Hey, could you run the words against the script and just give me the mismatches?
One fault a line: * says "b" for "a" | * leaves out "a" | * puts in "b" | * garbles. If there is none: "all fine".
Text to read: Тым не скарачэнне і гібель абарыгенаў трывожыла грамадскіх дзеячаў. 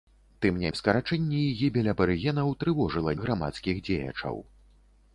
all fine